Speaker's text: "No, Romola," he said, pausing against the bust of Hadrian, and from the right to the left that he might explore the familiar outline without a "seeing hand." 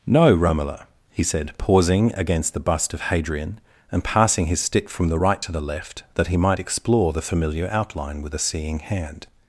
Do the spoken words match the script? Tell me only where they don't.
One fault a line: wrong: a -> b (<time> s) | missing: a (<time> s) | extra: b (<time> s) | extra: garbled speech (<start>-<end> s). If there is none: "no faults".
extra: passing his stick (4.0 s)
wrong: without -> with (8.2 s)